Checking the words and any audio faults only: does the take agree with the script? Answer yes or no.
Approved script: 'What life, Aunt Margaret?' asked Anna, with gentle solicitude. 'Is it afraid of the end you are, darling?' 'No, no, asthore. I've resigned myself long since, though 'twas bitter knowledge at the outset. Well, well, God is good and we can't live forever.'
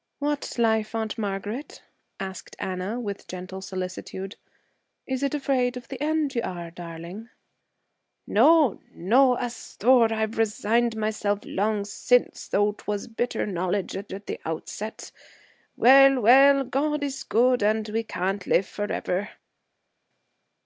no